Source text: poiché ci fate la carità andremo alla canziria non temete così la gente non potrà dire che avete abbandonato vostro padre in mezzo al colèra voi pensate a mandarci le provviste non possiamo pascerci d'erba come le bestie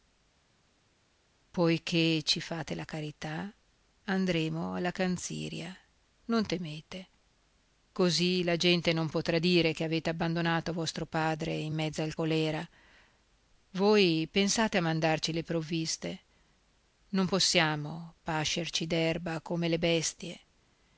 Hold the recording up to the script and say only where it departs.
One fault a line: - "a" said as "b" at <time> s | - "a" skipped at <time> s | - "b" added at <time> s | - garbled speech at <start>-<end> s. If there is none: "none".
none